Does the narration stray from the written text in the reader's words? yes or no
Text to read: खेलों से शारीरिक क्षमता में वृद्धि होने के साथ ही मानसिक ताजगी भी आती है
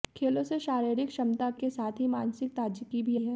yes